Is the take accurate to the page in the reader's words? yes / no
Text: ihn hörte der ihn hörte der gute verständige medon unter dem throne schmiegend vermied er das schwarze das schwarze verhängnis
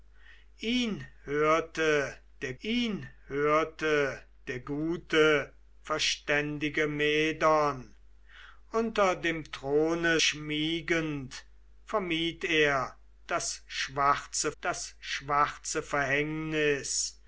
yes